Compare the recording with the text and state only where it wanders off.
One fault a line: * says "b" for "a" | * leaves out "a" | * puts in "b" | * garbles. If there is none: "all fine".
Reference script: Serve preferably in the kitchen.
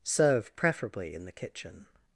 all fine